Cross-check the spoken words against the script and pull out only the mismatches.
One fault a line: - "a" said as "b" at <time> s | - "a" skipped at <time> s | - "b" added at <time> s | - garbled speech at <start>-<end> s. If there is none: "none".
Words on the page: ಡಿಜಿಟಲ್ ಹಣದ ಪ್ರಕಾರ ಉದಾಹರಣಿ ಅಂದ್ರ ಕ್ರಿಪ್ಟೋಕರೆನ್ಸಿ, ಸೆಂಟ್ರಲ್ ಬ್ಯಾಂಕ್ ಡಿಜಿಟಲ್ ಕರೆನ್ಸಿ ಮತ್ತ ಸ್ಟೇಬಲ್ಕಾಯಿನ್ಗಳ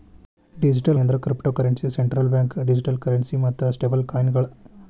- "ಹಣದ ಪ್ರಕಾರ ಉದಾಹರಣಿ" skipped at 1.0 s